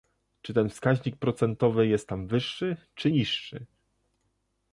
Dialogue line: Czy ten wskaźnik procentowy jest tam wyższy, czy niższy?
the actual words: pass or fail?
pass